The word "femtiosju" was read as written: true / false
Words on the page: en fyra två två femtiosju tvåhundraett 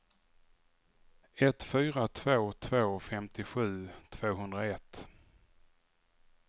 true